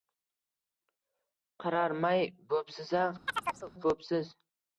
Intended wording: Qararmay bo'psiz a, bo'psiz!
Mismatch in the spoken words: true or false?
false